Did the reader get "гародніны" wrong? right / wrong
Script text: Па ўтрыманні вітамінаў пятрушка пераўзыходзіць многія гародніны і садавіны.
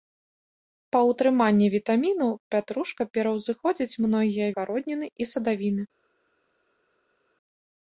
right